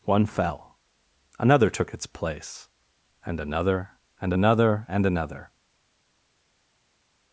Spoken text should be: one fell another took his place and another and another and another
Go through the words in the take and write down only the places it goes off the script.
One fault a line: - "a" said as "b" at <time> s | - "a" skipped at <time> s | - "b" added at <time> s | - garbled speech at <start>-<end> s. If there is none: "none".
- "his" said as "its" at 1.9 s